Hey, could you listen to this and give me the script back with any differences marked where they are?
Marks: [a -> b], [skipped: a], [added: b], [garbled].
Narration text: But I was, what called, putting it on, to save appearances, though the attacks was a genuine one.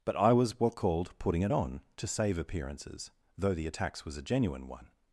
But I was, what called, putting it on, to save appearances, though the attacks was a genuine one.